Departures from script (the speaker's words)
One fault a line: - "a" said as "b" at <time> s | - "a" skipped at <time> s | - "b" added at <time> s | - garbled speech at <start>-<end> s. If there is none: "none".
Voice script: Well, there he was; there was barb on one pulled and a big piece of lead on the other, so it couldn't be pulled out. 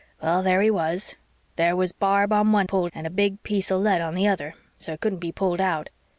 none